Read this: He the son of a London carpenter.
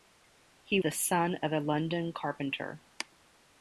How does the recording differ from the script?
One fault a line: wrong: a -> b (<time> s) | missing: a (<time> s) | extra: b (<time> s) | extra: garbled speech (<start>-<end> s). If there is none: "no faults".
no faults